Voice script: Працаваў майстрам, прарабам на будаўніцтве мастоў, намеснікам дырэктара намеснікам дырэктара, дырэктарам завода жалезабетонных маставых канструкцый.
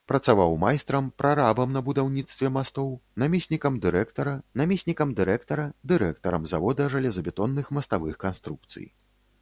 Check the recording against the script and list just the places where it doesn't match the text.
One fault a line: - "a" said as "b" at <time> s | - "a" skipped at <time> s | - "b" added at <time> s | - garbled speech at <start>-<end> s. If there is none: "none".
none